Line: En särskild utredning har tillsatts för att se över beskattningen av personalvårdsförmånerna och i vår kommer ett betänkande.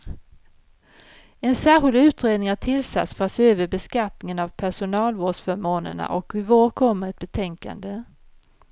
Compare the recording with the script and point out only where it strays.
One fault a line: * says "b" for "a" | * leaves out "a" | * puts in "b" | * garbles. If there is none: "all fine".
all fine